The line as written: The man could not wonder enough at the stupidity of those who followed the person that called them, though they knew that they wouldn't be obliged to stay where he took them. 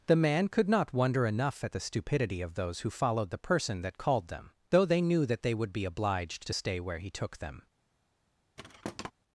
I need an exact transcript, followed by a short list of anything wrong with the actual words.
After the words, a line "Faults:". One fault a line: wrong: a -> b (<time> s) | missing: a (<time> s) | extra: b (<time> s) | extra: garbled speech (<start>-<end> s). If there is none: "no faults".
The man could not wonder enough at the stupidity of those who followed the person that called them, though they knew that they would be obliged to stay where he took them.
Faults:
wrong: wouldn't -> would (5.5 s)